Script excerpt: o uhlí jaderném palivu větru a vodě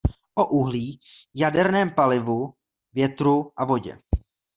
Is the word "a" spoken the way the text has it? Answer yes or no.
yes